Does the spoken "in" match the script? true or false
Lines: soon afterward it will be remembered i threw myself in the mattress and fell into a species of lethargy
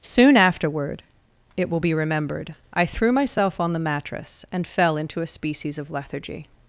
false